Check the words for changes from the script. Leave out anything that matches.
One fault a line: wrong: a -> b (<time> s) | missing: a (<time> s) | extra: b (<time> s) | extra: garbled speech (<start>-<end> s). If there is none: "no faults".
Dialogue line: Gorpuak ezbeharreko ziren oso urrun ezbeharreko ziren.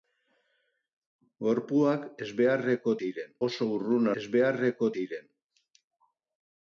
no faults